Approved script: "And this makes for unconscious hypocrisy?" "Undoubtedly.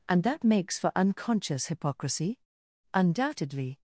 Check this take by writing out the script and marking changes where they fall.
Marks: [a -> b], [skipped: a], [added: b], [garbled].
"And [this -> that] makes for unconscious hypocrisy?" "Undoubtedly.